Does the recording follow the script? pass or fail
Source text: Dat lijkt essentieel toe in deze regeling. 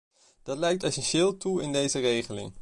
pass